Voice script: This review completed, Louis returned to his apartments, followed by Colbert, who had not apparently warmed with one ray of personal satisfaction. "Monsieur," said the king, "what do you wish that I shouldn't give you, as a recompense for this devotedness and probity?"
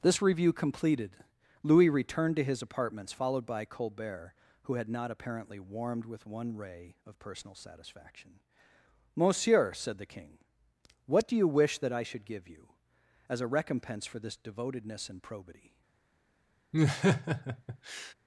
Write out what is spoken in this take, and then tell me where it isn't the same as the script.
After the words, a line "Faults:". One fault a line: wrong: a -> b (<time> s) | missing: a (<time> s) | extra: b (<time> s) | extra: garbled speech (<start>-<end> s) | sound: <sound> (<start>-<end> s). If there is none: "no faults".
This review completed, Louis returned to his apartments, followed by Colbert, who had not apparently warmed with one ray of personal satisfaction. "Monsieur," said the king, "what do you wish that I should give you, as a recompense for this devotedness and probity?"
Faults:
wrong: shouldn't -> should (12.0 s)
sound: laugh (16.7-18.1 s)